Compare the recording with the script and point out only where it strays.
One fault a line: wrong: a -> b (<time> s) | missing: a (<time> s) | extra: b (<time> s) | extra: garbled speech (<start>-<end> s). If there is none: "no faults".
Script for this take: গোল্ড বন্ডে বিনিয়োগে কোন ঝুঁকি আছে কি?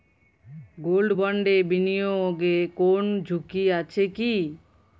no faults